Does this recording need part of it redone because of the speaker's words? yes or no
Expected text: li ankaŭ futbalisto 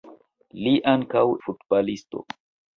no